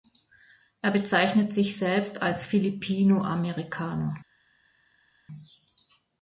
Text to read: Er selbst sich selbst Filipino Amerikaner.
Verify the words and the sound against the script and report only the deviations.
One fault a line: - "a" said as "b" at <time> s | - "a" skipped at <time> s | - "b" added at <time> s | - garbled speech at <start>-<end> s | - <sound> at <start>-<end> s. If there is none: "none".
- "selbst" said as "bezeichnet" at 0.9 s
- "als" added at 2.2 s